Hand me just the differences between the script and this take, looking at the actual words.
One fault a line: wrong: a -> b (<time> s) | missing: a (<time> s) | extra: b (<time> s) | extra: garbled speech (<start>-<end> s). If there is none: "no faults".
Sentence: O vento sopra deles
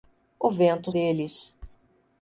missing: sopra (0.9 s)